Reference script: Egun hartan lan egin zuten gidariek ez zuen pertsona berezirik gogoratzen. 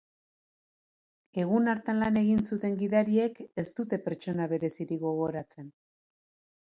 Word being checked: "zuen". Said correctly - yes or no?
no